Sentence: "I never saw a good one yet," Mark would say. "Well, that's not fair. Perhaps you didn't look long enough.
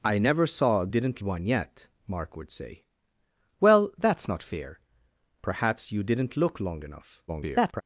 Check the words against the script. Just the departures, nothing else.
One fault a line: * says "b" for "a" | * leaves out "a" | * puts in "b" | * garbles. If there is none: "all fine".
* says "didn't" for "good"
* garbles